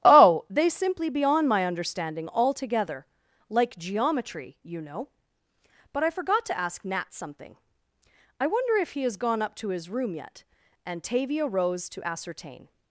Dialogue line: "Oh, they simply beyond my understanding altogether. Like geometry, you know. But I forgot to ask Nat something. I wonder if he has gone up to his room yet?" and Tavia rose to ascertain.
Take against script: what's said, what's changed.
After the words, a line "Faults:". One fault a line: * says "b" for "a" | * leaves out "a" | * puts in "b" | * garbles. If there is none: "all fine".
"Oh, they simply beyond my understanding altogether. Like geometry, you know. But I forgot to ask Nat something. I wonder if he has gone up to his room yet?" and Tavia rose to ascertain.
Faults:
all fine